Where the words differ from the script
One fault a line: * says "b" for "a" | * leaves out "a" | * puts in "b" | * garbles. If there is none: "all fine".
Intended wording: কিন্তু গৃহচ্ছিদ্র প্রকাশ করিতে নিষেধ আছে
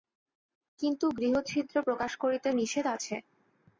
all fine